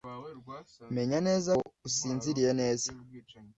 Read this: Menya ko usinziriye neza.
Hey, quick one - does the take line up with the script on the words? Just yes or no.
no